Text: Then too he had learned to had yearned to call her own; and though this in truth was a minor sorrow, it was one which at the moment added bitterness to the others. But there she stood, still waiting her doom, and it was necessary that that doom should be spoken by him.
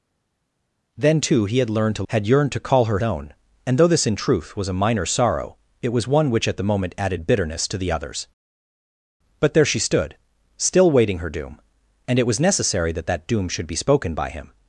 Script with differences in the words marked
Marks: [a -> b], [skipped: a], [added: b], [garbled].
Then too he had learned to had yearned to call her own; and though this in truth was a minor sorrow, it was one which at the moment added bitterness to the others. But there she stood, still waiting her doom, and it was necessary that that doom should be spoken by him.